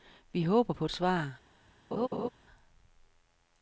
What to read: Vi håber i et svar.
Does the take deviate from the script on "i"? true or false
true